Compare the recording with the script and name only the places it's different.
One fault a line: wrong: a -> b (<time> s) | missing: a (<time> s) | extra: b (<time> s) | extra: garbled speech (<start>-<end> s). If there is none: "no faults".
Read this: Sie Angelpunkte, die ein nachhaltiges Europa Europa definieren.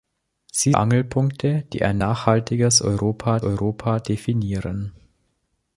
no faults